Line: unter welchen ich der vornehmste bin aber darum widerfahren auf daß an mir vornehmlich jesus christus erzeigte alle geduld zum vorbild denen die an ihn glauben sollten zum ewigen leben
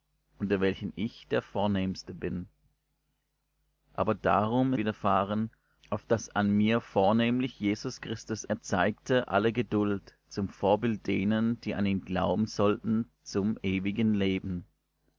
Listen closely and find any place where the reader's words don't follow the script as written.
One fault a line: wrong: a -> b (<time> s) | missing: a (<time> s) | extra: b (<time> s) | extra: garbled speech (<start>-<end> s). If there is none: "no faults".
no faults